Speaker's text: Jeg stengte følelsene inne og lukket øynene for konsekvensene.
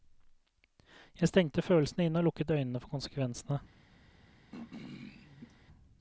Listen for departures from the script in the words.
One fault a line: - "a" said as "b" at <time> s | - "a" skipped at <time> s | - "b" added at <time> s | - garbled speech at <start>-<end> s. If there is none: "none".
none